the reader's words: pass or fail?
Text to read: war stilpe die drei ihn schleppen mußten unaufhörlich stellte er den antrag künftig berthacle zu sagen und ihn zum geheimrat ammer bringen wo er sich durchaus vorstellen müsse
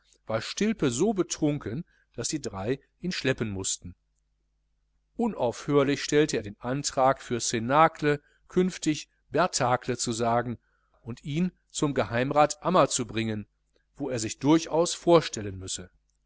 fail